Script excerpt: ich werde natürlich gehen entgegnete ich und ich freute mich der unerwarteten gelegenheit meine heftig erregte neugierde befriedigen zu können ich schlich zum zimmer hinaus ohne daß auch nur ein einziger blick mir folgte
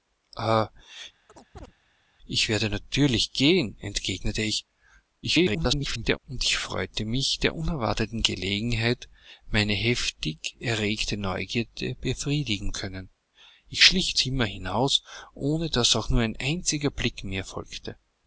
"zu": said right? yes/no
no